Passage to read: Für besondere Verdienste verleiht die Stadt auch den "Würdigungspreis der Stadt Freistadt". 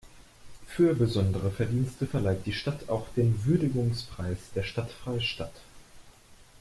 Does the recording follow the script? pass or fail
pass